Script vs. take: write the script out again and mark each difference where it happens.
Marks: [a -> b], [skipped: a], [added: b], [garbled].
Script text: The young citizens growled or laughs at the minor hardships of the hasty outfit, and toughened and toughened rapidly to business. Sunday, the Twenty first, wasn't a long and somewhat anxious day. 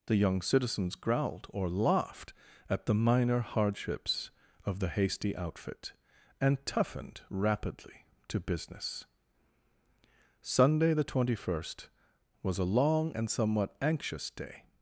The young citizens growled or [laughs -> laughed] at the minor hardships of the hasty outfit, and toughened [skipped: and toughened] rapidly to business. Sunday, the Twenty first, [wasn't -> was] a long and somewhat anxious day.